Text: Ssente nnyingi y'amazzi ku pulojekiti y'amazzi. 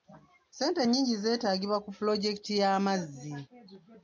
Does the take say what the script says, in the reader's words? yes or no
no